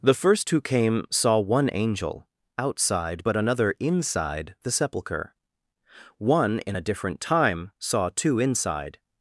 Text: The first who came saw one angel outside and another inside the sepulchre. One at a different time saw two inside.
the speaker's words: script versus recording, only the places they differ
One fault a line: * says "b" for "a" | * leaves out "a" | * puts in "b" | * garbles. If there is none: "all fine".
* says "but" for "and"
* says "in" for "at"